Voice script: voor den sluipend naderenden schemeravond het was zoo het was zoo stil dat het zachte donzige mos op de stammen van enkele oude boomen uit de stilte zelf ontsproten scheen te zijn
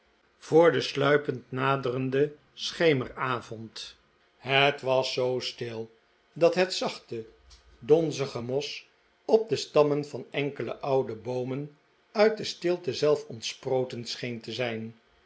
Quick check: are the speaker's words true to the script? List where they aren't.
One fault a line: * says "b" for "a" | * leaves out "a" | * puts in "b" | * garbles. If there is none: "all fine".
* leaves out "het was zoo"